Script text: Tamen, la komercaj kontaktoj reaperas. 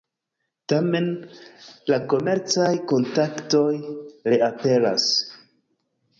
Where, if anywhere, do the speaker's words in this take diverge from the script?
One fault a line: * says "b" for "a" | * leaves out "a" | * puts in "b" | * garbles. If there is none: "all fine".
all fine